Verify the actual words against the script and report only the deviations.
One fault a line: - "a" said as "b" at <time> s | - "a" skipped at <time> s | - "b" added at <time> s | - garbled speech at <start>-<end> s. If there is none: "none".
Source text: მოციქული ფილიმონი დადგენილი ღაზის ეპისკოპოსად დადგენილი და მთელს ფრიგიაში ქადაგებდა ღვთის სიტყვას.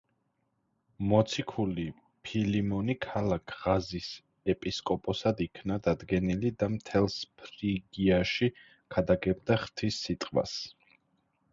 - "დადგენილი" said as "ქალაქ" at 3.0 s
- "იქნა" added at 5.5 s